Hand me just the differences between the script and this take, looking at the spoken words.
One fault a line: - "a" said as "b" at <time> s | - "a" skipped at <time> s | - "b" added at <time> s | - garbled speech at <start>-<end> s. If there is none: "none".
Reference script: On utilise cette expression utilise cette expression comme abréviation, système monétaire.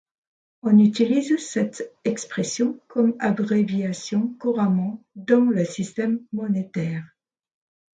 - "utilise cette expression comme abréviation" said as "comme abréviation couramment dans le" at 2.9 s